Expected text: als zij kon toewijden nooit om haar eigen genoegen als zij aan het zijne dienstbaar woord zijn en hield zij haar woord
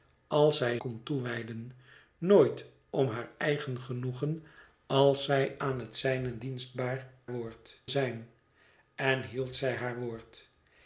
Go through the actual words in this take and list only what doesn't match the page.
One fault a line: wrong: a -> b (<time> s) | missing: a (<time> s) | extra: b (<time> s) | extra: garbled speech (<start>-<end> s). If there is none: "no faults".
no faults